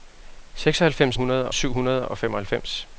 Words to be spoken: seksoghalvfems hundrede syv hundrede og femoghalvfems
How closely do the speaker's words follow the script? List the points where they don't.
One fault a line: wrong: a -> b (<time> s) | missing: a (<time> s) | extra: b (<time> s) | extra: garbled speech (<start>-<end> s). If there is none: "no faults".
no faults